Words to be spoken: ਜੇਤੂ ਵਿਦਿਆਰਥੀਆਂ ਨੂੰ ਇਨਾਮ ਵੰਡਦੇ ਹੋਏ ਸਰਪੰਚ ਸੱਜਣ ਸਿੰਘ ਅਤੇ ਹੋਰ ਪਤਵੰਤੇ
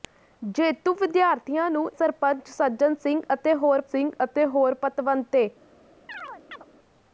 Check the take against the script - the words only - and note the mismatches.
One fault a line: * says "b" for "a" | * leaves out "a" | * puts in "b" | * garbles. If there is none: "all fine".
* says "ਸਰਪੰਚ ਸੱਜਣ ਸਿੰਘ ਅਤੇ ਹੋਰ" for "ਇਨਾਮ ਵੰਡਦੇ ਹੋਏ ਸਰਪੰਚ ਸੱਜਣ"